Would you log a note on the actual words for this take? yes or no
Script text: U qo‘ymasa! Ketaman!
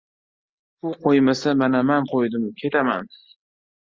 yes